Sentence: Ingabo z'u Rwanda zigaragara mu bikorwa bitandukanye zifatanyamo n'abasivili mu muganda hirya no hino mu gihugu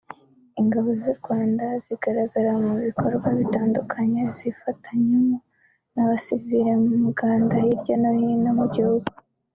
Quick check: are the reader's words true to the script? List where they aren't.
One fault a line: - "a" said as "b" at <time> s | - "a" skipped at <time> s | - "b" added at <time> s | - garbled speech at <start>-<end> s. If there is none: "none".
none